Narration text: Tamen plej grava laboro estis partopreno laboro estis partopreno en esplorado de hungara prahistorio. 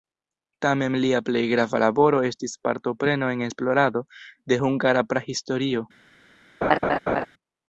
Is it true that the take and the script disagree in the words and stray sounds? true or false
true